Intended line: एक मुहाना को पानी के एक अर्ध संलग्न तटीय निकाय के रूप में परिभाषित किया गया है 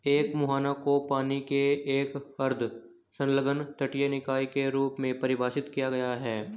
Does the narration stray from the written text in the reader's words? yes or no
no